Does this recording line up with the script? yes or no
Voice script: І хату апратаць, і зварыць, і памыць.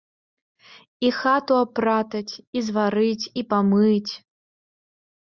yes